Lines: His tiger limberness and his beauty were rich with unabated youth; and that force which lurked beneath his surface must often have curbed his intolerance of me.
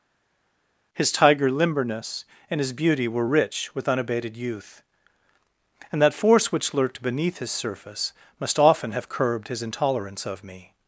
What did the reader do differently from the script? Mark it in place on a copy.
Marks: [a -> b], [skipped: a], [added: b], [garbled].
His tiger limberness and his beauty were rich with unabated youth; and that force which lurked beneath his surface must often have curbed his intolerance of me.